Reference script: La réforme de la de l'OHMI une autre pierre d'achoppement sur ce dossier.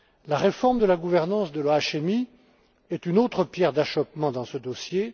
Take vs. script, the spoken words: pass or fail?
fail